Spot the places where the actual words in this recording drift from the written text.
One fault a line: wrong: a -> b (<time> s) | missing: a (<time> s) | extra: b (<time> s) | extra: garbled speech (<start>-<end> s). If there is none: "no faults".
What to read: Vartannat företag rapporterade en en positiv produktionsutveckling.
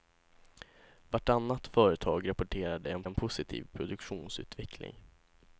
no faults